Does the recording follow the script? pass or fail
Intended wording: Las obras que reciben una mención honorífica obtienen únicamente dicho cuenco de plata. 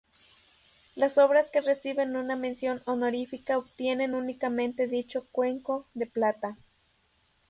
pass